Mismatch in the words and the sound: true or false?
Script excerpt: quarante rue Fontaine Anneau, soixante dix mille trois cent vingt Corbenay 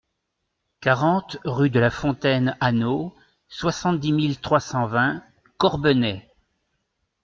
true